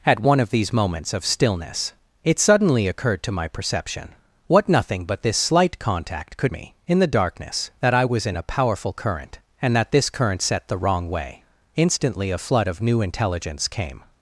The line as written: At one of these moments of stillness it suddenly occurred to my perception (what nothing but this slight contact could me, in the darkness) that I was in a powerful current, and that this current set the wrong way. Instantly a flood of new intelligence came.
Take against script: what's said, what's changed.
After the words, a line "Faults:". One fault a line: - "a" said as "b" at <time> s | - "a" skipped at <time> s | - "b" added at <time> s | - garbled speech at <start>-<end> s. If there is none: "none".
At one of these moments of stillness it suddenly occurred to my perception (what nothing but this slight contact could me, in the darkness) that I was in a powerful current, and that this current set the wrong way. Instantly a flood of new intelligence came.
Faults:
none